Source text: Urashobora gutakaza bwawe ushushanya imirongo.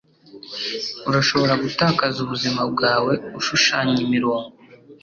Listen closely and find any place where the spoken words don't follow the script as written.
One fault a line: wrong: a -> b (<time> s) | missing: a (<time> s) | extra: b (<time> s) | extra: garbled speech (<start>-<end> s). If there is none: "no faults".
extra: ubuzima (2.2 s)